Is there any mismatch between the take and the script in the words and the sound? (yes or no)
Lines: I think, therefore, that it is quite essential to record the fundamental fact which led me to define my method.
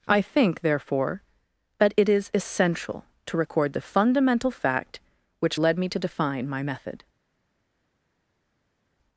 yes